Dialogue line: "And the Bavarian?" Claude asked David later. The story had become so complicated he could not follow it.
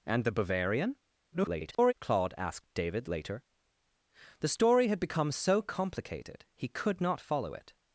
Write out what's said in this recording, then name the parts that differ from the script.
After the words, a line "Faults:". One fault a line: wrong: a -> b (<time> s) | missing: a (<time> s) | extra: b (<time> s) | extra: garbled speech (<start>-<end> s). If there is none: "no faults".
"And the Bavarian?" [garbled] Claude asked David later. The story had become so complicated he could not follow it.
Faults:
extra: garbled speech (1.3-1.9 s)